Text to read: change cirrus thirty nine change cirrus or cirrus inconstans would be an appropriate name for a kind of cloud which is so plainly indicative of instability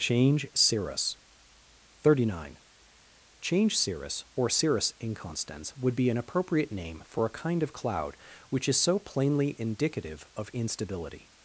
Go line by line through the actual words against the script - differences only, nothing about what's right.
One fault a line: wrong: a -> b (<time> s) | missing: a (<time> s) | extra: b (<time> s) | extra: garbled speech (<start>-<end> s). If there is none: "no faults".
no faults